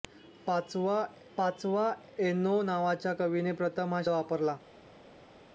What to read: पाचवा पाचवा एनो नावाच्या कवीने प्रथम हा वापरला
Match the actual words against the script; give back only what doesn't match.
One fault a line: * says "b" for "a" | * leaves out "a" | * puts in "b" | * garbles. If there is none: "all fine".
all fine